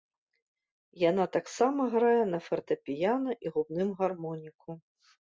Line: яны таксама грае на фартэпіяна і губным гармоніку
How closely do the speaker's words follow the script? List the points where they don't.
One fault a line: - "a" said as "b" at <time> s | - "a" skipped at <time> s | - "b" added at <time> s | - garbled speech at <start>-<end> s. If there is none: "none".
- "яны" said as "яна" at 1.1 s